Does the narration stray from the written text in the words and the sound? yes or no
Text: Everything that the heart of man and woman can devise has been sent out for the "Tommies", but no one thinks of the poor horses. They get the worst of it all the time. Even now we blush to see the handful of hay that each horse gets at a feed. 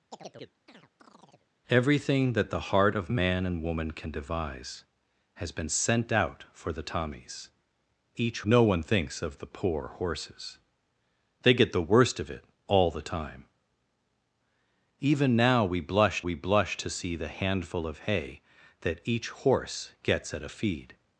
yes